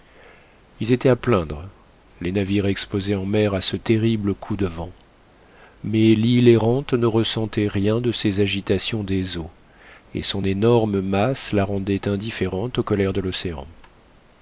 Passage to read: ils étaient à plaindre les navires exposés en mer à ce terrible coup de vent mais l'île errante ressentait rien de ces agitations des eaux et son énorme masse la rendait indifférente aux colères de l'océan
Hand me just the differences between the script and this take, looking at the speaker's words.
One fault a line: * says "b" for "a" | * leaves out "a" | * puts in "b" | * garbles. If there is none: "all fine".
* puts in "ne"